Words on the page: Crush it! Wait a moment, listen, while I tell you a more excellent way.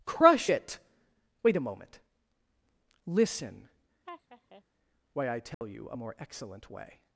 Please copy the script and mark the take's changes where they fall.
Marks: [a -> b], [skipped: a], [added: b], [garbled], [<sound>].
Crush it! Wait a moment, listen, [laugh] [while -> why] I tell [dropout] you a more excellent way.